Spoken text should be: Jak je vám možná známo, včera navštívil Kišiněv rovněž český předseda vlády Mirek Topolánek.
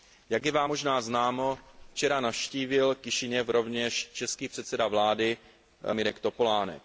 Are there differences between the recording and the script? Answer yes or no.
no